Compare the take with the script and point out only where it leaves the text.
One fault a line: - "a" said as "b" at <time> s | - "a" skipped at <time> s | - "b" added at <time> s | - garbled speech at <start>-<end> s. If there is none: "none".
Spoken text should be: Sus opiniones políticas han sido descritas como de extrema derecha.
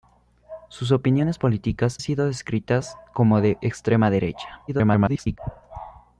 - "han" skipped at 2.0 s
- garbled speech at 4.7-5.4 s